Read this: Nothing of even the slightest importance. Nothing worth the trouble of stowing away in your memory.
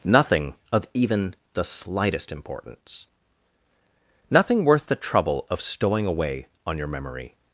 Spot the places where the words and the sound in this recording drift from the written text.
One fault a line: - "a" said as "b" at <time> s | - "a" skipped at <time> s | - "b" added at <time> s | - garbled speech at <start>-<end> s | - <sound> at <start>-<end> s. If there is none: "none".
- "in" said as "on" at 6.7 s